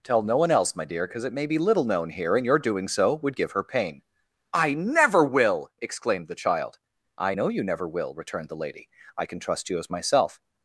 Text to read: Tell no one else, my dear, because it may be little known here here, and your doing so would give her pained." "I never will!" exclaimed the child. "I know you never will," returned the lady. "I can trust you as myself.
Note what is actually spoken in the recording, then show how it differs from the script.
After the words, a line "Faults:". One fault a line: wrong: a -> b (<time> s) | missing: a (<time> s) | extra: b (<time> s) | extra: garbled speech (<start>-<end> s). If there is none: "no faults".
Tell no one else, my dear, because it may be little known here, and your doing so would give her pain." "I never will!" exclaimed the child. "I know you never will," returned the lady. "I can trust you as myself.
Faults:
missing: here (2.4 s)
wrong: pained -> pain (3.6 s)